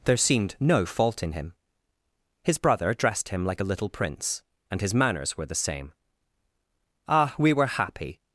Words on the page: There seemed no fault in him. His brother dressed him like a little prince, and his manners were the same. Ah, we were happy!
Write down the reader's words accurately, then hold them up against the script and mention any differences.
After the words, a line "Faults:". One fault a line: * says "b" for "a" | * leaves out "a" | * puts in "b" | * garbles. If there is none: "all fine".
There seemed no fault in him. His brother dressed him like a little prince, and his manners were the same. Ah, we were happy!
Faults:
all fine